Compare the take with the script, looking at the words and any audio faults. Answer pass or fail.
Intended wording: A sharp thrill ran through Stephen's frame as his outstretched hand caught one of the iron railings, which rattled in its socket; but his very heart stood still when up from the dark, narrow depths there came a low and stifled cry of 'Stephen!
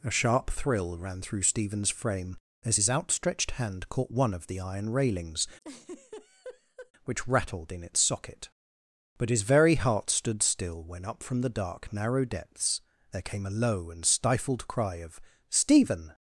fail